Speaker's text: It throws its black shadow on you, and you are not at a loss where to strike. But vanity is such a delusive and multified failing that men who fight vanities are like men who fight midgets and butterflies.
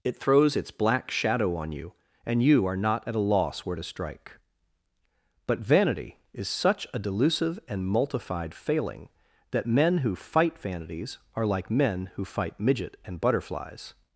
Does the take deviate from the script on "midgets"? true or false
true